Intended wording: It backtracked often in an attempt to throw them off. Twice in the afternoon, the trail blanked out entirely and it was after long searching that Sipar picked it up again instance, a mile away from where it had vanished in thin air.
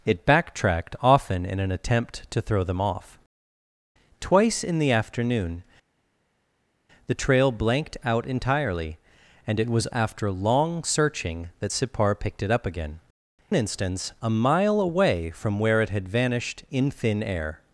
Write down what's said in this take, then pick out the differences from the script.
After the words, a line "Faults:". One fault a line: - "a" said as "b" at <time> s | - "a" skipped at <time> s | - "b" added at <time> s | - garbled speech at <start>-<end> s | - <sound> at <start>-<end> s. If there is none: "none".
It backtracked often in an attempt to throw them off. Twice in the afternoon, the trail blanked out entirely and it was after long searching that Sipar picked it up again instance, a mile away from where it had vanished in thin air.
Faults:
none